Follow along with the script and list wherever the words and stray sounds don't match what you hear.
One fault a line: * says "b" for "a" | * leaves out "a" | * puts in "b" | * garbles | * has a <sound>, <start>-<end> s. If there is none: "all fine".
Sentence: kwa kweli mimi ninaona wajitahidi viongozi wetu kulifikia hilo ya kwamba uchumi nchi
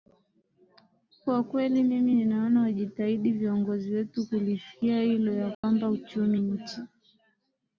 * has a dropout, 5.5-5.6 s